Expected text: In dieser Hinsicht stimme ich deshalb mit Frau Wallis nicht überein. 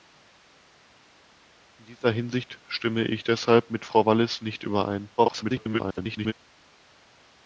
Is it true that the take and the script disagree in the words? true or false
true